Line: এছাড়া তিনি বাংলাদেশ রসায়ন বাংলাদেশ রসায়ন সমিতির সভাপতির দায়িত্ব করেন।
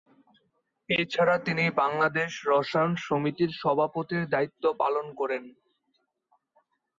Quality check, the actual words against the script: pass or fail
fail